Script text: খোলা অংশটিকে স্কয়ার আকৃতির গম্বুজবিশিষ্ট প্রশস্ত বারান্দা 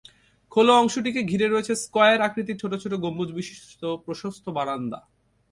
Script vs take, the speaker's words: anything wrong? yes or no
yes